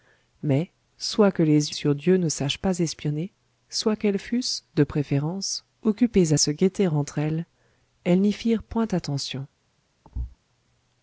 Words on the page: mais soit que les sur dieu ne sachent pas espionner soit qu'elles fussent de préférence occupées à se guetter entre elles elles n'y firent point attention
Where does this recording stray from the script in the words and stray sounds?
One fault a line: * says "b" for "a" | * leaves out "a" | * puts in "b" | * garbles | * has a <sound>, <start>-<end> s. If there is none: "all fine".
* has a thud, 10.0-10.4 s